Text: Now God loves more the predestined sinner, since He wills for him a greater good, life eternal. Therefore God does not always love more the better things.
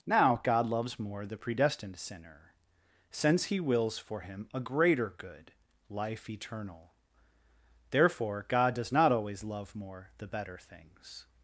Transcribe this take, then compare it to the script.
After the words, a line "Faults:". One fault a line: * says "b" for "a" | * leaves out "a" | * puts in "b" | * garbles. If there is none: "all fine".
Now God loves more the predestined sinner, since He wills for him a greater good, life eternal. Therefore God does not always love more the better things.
Faults:
all fine